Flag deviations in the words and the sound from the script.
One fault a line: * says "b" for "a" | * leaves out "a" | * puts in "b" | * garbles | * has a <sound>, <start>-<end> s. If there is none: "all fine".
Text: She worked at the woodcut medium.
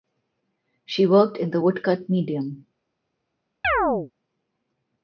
* says "in" for "at"
* has a chirp, 3.6-4.1 s